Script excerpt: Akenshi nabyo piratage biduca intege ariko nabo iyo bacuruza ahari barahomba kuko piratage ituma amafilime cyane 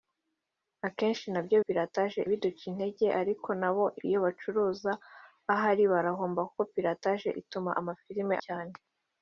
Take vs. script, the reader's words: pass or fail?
pass